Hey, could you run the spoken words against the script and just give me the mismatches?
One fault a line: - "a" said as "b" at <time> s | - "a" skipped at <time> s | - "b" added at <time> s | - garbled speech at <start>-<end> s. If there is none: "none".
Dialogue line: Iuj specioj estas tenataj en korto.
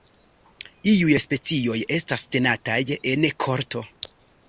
none